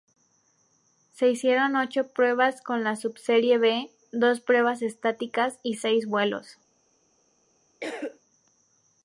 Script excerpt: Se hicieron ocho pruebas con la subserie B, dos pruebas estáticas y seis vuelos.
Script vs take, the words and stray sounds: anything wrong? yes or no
yes